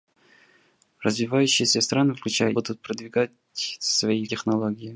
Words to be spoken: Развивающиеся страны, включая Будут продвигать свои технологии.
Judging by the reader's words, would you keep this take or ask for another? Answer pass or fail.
pass